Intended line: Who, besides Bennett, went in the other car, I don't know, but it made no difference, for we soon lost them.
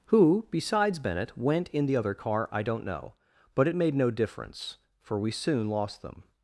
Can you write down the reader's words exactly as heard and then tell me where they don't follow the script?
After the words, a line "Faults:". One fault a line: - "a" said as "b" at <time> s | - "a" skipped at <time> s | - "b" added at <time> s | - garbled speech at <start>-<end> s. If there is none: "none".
Who, besides Bennett, went in the other car, I don't know, but it made no difference, for we soon lost them.
Faults:
none